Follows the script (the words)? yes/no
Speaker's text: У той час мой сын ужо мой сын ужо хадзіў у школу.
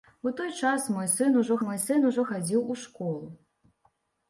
yes